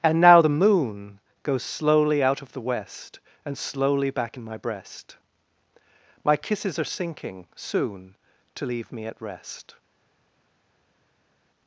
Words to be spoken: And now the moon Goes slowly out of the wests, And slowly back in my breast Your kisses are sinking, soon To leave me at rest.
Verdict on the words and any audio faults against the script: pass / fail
fail